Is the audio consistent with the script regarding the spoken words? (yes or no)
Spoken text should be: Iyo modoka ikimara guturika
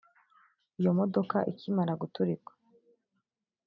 yes